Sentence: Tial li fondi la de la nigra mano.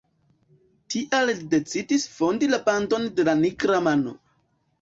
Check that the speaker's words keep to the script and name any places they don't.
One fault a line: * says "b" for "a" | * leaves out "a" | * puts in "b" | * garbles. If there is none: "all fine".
* puts in "decidis"
* puts in "bandon"